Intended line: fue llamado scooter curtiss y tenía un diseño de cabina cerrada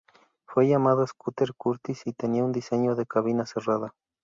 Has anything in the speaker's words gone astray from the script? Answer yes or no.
no